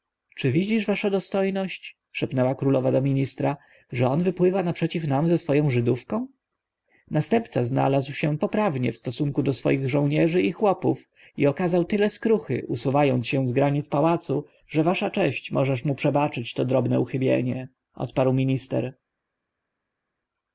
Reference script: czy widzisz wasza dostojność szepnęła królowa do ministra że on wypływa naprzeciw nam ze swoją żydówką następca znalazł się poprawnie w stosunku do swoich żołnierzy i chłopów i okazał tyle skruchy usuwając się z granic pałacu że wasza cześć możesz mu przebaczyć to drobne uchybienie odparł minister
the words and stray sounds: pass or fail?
pass